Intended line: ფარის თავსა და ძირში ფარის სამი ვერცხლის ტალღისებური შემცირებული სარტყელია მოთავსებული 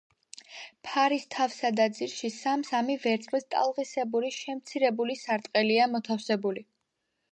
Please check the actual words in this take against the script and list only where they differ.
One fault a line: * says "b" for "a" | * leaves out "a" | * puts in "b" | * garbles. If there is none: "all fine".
* says "სამ" for "ფარის"